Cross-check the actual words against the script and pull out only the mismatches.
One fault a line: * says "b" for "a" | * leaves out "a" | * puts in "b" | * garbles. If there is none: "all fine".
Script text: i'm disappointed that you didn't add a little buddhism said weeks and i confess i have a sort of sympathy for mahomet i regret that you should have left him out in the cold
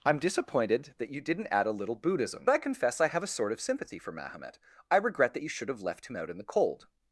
* leaves out "said weeks and"